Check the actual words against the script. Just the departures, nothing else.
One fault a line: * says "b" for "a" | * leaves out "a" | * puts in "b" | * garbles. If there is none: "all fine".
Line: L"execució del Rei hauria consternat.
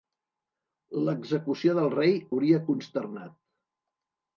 all fine